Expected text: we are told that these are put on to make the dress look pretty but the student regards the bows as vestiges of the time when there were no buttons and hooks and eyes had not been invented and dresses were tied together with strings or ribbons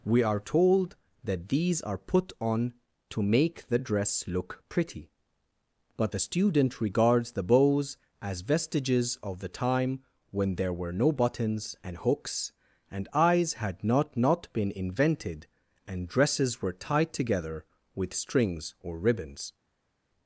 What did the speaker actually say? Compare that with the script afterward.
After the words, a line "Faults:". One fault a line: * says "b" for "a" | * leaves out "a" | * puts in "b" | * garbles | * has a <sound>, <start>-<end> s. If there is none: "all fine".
we are told that these are put on to make the dress look pretty but the student regards the bows as vestiges of the time when there were no buttons and hooks and eyes had not not been invented and dresses were tied together with strings or ribbons
Faults:
* puts in "not"